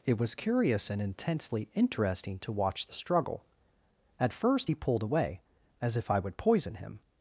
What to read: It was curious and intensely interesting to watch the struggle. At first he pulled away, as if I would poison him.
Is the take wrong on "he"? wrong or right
right